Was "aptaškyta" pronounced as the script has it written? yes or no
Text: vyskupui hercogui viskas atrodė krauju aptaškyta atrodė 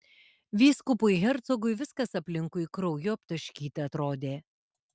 yes